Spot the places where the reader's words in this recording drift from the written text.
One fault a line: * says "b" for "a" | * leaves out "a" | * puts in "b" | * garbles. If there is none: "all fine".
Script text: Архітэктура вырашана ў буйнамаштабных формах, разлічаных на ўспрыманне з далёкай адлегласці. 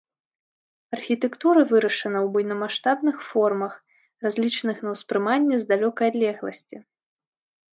all fine